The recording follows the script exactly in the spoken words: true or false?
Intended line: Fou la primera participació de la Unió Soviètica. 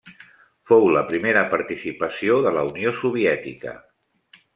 true